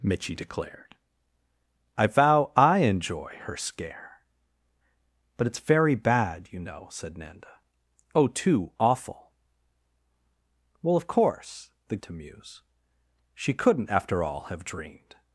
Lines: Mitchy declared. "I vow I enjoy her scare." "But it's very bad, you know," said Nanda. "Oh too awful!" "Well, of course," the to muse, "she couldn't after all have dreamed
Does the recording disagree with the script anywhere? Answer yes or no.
no